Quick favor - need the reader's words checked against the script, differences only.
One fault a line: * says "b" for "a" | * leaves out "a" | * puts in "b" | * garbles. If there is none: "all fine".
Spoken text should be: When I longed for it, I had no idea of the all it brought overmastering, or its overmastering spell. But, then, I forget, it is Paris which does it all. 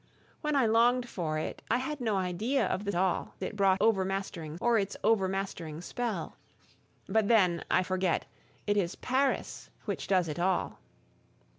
all fine